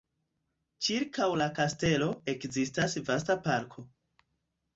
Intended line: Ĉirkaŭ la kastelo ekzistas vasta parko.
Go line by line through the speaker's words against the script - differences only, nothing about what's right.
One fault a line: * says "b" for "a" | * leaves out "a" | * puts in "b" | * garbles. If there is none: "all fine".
all fine